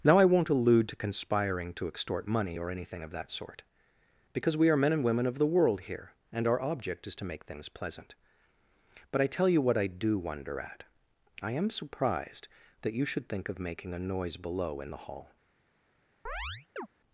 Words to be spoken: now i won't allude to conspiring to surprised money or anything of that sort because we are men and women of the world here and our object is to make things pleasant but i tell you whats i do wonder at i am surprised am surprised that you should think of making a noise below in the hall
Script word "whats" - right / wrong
wrong